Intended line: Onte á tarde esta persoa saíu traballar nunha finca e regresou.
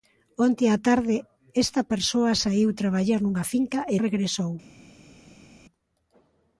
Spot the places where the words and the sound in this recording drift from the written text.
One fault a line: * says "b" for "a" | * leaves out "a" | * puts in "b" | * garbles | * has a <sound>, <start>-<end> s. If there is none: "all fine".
all fine